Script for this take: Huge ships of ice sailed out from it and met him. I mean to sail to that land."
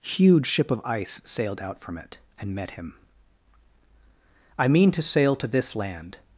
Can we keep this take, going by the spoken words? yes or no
no